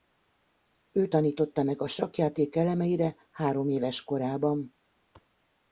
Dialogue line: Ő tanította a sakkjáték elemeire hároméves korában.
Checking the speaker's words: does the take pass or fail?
fail